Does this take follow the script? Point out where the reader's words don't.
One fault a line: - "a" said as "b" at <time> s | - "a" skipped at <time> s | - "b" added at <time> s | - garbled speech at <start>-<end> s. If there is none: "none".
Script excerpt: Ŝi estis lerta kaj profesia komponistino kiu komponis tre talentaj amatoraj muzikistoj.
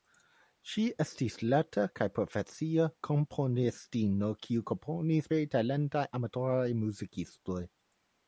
none